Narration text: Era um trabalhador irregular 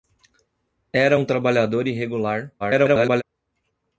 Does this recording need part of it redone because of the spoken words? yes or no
yes